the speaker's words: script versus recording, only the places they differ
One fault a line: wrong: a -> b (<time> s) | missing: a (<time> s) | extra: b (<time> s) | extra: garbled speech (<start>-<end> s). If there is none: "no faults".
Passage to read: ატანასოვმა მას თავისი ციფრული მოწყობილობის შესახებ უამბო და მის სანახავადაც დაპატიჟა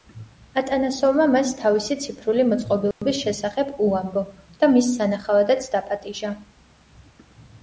no faults